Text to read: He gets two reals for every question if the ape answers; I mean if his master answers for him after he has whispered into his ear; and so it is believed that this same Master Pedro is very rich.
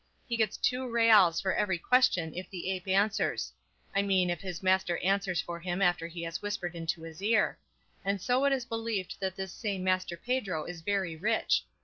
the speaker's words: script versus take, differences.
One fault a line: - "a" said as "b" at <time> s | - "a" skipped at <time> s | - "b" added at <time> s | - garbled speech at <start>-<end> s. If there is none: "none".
none